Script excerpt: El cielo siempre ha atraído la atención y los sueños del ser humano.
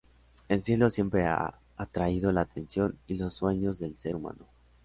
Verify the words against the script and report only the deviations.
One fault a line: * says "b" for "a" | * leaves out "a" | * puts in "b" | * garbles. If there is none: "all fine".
all fine